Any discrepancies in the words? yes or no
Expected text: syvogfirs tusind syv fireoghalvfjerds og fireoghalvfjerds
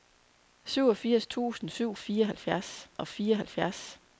no